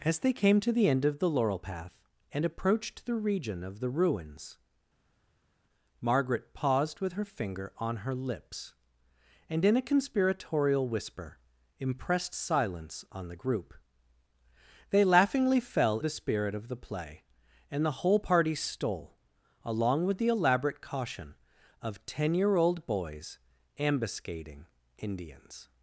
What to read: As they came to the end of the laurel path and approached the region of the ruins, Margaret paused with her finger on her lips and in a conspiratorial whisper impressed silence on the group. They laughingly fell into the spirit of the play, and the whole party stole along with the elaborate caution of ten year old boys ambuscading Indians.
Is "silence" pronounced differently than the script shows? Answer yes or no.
no